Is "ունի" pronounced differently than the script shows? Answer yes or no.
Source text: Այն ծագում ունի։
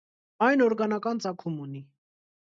no